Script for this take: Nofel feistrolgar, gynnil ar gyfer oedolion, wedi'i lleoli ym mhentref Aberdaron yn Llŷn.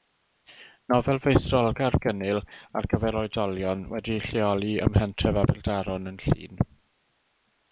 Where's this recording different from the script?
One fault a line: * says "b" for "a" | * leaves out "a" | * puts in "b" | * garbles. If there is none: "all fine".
all fine